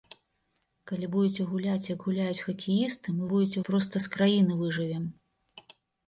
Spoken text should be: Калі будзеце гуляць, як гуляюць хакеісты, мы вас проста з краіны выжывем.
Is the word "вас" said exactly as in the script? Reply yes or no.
no